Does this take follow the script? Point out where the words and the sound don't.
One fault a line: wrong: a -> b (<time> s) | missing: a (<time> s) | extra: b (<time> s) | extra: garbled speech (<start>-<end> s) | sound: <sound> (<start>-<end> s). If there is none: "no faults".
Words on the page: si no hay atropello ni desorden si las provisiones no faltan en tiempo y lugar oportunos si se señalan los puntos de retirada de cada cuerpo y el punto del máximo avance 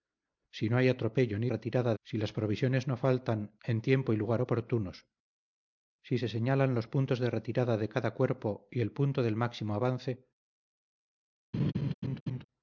wrong: desorden -> retirada (1.5 s)
sound: laugh (11.5-12.4 s)